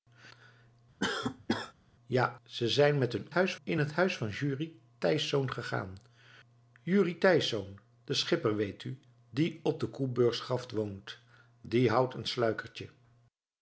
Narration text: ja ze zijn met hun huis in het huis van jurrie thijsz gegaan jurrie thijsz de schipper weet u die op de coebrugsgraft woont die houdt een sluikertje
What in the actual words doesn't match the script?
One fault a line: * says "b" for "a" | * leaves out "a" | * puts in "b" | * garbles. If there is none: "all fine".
all fine